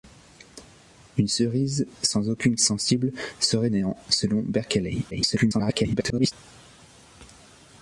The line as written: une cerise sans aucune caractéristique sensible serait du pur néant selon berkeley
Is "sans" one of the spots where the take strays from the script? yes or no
no